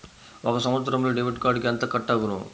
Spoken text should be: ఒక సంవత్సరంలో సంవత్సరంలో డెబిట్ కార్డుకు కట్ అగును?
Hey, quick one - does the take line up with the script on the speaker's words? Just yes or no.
no